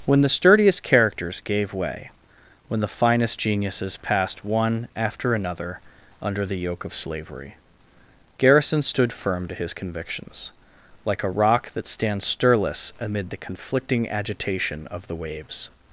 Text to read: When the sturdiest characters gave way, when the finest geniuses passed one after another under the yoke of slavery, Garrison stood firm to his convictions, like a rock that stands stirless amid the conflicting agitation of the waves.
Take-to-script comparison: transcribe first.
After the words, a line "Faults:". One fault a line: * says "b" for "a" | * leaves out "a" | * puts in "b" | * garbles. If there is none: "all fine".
When the sturdiest characters gave way, when the finest geniuses passed one after another under the yoke of slavery, Garrison stood firm to his convictions, like a rock that stands stirless amid the conflicting agitation of the waves.
Faults:
all fine